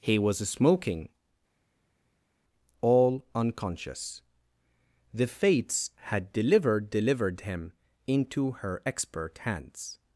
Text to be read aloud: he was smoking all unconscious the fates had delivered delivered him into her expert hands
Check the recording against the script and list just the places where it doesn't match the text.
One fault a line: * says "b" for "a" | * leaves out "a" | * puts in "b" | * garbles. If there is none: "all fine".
all fine